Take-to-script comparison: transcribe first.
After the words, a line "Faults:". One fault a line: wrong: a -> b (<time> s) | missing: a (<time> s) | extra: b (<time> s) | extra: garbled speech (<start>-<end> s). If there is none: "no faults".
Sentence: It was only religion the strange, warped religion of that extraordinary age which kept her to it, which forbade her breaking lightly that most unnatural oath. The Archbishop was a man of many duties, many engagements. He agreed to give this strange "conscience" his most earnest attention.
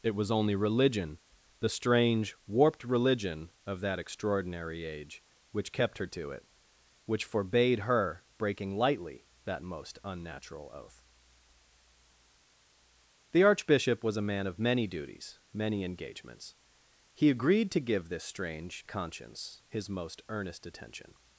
It was only religion the strange, warped religion of that extraordinary age which kept her to it, which forbade her breaking lightly that most unnatural oath. The Archbishop was a man of many duties, many engagements. He agreed to give this strange "conscience" his most earnest attention.
Faults:
no faults